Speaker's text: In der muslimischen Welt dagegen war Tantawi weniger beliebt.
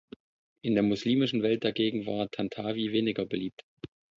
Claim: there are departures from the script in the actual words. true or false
false